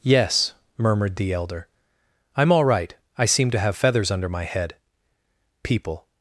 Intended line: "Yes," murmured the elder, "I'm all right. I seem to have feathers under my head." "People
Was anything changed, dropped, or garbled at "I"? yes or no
no